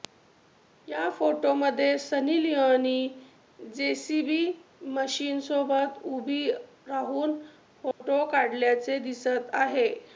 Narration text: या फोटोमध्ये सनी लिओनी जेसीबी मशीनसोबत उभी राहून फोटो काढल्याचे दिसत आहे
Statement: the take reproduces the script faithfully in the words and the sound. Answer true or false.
false